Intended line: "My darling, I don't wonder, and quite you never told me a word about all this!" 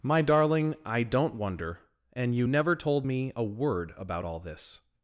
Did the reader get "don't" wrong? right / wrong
right